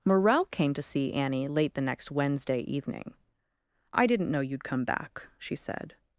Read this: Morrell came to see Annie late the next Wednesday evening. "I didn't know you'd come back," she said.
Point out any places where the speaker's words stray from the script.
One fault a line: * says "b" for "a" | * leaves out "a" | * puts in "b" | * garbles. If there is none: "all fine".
all fine